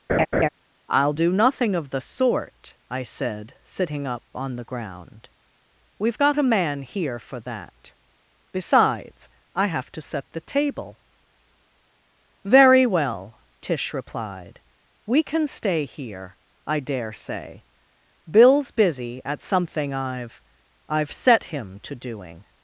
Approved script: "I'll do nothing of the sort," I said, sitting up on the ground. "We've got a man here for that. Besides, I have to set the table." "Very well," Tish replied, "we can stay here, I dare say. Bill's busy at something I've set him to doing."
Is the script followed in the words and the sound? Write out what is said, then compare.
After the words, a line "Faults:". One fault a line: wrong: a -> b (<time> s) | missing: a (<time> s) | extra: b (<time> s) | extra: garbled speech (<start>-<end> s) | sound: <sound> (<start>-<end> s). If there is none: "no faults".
"I'll do nothing of the sort," I said, sitting up on the ground. "We've got a man here for that. Besides, I have to set the table." "Very well," Tish replied, "we can stay here, I dare say. Bill's busy at something I've I've set him to doing."
Faults:
sound: laugh (0.1-0.5 s)
extra: I've (20.9 s)